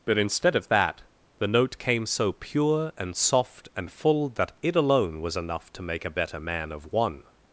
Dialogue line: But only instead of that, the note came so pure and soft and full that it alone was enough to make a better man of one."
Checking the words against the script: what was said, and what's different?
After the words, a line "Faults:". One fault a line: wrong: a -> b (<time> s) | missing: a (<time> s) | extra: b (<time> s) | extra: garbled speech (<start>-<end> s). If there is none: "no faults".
But instead of that, the note came so pure and soft and full that it alone was enough to make a better man of one."
Faults:
missing: only (0.2 s)